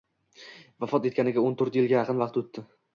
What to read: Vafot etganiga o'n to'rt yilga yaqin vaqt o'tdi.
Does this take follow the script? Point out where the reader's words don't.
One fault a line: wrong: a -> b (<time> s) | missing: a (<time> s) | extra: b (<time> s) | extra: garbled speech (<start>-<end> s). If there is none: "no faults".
no faults